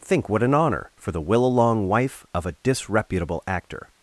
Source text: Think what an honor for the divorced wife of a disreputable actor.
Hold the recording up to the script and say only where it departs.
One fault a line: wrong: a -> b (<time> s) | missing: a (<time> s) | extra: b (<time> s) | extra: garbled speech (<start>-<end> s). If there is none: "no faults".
wrong: divorced -> willalong (1.2 s)